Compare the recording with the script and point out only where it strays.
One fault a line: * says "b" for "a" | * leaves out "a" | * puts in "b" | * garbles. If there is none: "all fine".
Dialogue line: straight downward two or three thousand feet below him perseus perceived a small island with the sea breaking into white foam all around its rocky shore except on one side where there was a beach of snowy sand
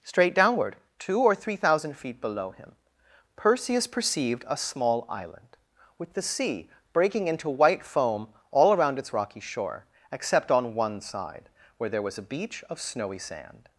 all fine